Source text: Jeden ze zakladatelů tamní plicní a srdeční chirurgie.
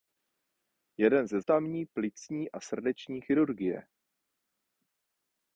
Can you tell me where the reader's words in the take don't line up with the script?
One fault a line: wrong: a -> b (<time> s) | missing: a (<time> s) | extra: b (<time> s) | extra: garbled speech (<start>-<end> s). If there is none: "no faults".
missing: zakladatelů (1.4 s)